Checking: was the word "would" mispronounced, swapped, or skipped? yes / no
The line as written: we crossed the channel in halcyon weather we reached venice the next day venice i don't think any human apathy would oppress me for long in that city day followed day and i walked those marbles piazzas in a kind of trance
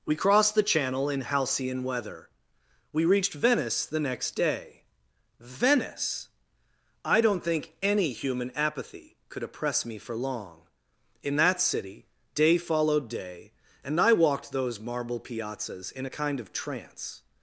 yes